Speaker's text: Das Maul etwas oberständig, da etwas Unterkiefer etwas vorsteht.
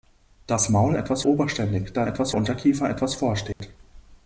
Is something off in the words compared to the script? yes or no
no